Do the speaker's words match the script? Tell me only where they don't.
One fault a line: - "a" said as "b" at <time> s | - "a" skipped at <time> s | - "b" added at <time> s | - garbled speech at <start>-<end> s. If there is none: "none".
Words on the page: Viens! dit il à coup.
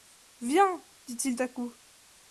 none